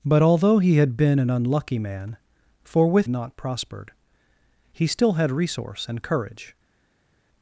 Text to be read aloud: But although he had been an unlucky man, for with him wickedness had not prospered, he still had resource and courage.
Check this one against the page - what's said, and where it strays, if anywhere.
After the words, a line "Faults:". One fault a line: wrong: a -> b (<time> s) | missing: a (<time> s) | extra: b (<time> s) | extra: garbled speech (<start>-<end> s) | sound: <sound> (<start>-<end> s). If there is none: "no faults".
But although he had been an unlucky man, for with not prospered, he still had resource and courage.
Faults:
missing: him wickedness had (3.1 s)